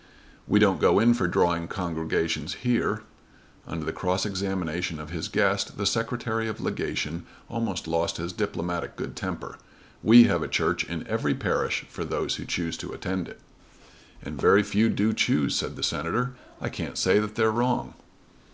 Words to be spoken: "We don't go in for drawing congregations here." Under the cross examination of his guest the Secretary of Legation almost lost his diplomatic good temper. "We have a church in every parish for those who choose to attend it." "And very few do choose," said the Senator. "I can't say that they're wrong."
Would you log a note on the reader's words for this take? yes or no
no